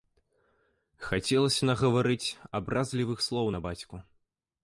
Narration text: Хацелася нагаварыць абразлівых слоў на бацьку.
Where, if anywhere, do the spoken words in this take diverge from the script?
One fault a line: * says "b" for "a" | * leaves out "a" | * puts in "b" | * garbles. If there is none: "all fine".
all fine